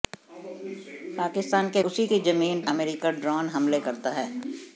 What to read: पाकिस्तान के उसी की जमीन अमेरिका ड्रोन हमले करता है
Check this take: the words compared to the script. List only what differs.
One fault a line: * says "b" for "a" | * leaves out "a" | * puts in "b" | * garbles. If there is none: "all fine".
all fine